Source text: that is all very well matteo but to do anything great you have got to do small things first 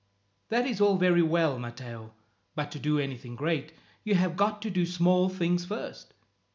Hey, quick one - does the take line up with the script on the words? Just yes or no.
yes